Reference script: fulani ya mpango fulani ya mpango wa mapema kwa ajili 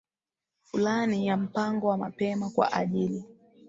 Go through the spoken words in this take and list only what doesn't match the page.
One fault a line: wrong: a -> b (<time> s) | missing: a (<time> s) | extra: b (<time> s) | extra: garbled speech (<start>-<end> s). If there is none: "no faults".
missing: fulani ya mpango (1.9 s)